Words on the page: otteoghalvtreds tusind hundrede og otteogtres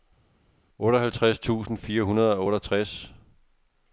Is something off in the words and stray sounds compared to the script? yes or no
yes